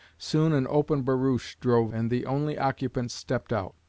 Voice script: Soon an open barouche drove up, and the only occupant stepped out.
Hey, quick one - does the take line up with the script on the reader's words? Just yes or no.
no